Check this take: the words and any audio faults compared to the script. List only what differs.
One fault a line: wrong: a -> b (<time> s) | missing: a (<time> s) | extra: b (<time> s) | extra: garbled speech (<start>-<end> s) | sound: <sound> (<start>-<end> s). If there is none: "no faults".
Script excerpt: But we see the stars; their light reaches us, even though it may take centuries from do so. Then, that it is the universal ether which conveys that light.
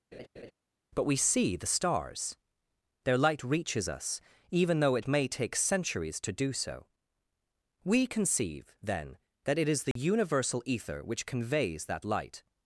sound: laugh (0.1-0.5 s)
wrong: from -> to (6.2 s)
extra: We conceive (7.8 s)
sound: dropout (9.9-10.0 s)